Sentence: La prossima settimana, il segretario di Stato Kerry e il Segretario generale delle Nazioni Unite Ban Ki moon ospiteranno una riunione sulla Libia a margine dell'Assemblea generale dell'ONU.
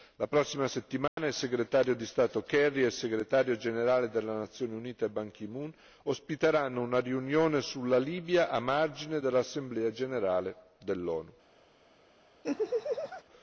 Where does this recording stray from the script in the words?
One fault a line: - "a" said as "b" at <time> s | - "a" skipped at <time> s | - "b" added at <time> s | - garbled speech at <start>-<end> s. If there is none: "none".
none